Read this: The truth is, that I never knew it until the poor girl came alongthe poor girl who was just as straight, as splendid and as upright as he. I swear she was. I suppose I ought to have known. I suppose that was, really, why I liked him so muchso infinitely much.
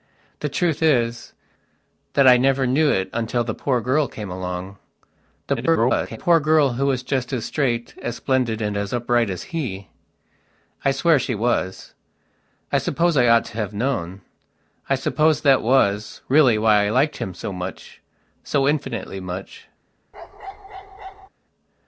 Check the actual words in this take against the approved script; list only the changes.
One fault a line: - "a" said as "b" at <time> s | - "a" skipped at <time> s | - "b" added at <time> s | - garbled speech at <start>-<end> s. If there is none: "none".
- garbled speech at 5.6-6.2 s